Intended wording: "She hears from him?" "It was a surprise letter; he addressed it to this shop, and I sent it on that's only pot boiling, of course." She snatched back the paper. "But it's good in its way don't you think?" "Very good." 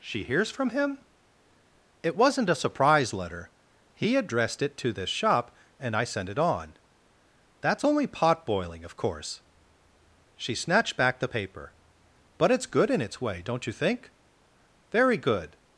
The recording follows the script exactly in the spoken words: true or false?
false